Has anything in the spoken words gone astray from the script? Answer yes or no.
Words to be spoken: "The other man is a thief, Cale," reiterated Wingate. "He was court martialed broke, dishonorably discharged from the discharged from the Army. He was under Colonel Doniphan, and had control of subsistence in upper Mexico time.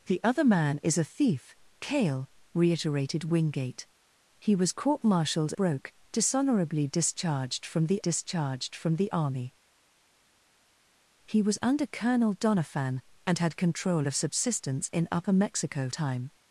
no